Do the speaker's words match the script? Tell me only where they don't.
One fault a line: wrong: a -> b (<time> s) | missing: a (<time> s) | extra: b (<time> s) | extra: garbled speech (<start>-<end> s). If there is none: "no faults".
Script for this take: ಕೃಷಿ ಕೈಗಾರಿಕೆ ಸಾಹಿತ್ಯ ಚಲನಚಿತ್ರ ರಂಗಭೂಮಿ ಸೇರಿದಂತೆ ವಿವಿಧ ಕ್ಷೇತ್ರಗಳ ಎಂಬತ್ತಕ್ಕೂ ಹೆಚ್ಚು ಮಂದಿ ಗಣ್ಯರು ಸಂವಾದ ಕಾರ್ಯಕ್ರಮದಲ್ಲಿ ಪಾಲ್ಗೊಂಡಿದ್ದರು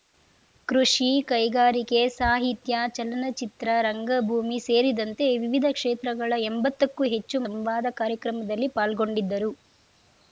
missing: ಮಂದಿ ಗಣ್ಯರು (7.4 s)